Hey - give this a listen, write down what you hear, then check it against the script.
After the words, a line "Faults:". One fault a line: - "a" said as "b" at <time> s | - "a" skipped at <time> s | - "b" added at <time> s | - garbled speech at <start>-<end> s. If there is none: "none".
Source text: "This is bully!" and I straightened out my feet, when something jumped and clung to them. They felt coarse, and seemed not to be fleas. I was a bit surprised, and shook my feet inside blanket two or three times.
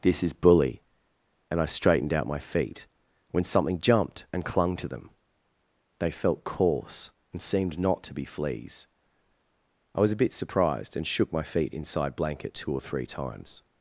"This is bully!" and I straightened out my feet, when something jumped and clung to them. They felt coarse, and seemed not to be fleas. I was a bit surprised, and shook my feet inside blanket two or three times.
Faults:
none